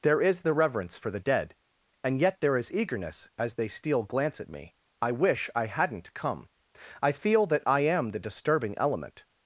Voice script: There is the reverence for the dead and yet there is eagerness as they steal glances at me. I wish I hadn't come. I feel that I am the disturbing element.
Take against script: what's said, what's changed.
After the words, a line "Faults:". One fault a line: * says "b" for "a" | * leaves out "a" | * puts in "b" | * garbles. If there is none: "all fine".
There is the reverence for the dead and yet there is eagerness as they steal glance at me. I wish I hadn't come. I feel that I am the disturbing element.
Faults:
* says "glance" for "glances"